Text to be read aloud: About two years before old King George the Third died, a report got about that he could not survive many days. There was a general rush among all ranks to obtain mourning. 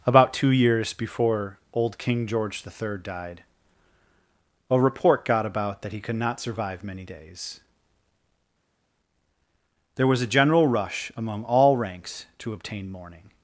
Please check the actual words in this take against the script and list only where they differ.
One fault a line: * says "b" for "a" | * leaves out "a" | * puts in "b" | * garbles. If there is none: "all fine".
all fine